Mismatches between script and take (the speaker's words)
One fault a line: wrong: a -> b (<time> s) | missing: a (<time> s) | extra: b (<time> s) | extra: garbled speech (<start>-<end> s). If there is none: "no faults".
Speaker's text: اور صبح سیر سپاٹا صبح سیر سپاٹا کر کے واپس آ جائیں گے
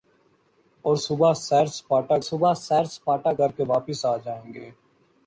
no faults